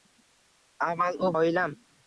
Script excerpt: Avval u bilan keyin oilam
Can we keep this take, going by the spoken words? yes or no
no